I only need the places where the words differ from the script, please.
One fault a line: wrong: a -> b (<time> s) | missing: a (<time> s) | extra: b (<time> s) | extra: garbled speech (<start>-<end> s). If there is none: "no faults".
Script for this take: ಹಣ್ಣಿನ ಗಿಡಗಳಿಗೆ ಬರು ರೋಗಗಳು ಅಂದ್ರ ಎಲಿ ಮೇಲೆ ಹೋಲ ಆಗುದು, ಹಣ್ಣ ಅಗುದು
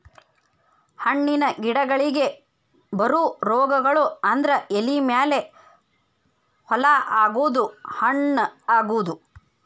no faults